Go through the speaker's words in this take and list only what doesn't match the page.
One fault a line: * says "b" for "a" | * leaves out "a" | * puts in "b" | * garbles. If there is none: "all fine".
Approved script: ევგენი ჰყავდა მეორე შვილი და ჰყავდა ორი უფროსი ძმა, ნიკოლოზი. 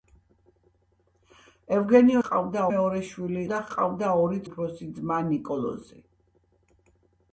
all fine